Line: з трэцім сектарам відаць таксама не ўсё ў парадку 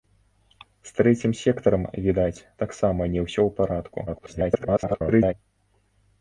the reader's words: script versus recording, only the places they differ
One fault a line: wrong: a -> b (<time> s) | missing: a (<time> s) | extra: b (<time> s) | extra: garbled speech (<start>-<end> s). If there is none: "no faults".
extra: garbled speech (4.1-5.3 s)